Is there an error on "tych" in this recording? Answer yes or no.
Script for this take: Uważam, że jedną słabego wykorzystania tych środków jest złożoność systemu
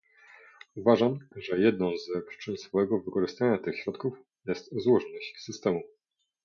no